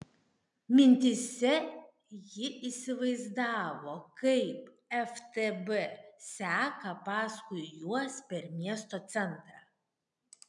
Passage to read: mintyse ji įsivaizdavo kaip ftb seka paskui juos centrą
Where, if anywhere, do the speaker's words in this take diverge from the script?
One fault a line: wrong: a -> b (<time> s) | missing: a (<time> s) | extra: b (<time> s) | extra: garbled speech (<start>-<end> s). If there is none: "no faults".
extra: per miesto (8.3 s)